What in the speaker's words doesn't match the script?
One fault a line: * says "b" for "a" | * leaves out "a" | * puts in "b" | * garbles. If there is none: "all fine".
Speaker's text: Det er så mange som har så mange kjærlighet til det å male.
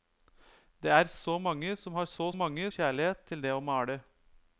all fine